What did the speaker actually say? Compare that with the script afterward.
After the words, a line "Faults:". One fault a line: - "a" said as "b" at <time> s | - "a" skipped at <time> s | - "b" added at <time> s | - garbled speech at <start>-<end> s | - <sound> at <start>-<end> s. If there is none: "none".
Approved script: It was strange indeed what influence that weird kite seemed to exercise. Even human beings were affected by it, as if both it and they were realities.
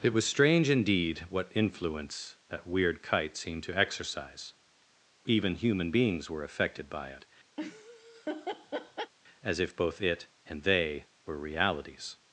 It was strange indeed what influence that weird kite seemed to exercise. Even human beings were affected by it, as if both it and they were realities.
Faults:
- laugh at 7.6-9.1 s